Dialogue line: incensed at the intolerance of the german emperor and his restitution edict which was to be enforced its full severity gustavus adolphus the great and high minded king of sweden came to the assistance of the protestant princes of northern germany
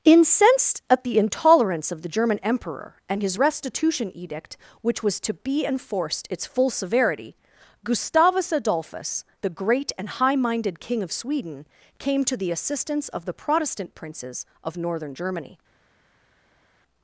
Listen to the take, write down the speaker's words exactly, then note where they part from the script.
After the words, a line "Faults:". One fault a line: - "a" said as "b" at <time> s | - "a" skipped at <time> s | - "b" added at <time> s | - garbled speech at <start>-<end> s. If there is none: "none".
incensed at the intolerance of the german emperor and his restitution edict which was to be enforced its full severity gustavus adolphus the great and high minded king of sweden came to the assistance of the protestant princes of northern germany
Faults:
none